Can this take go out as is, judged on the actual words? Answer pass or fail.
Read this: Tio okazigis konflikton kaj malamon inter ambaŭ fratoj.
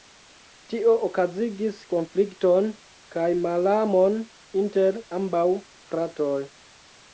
pass